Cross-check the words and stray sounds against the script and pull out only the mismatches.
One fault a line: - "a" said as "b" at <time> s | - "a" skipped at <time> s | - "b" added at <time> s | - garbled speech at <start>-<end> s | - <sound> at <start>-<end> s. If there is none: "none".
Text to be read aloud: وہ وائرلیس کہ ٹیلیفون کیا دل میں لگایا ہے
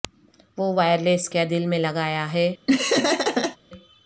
- "کہ ٹیلیفون" skipped at 1.3 s
- laugh at 2.7-3.6 s